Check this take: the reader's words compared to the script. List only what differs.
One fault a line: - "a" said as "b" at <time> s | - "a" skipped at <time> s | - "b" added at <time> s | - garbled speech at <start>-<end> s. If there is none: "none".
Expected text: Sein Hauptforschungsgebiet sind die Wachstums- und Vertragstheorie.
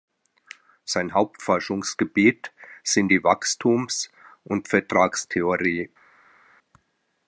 none